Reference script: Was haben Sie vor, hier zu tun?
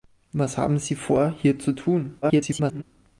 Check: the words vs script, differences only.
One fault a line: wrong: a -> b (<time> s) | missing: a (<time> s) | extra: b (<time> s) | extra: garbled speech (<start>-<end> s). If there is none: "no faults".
extra: garbled speech (2.2-2.8 s)